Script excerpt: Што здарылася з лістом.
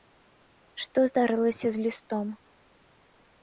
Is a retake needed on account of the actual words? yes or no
no